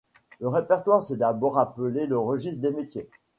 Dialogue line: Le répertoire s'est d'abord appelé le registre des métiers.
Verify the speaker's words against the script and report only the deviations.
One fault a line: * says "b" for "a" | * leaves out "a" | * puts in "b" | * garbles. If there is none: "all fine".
all fine